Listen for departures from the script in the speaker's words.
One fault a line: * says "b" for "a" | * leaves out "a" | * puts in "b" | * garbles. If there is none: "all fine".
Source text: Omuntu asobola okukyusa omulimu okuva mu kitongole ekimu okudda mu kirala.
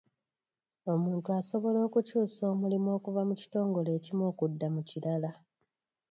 all fine